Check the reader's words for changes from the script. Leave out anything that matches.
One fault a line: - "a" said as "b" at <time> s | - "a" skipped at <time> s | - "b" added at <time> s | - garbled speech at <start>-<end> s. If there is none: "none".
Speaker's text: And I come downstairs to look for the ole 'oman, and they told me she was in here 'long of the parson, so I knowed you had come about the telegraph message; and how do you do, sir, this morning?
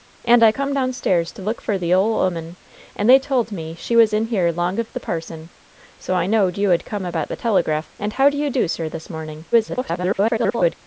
- "message" skipped at 7.9 s
- garbled speech at 9.5-10.7 s